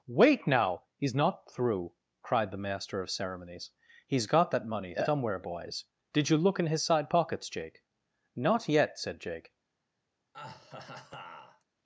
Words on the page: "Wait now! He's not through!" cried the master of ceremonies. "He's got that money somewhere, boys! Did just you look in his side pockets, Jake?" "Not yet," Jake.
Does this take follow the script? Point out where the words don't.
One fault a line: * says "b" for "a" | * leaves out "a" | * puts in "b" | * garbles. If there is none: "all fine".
* leaves out "just"
* puts in "said"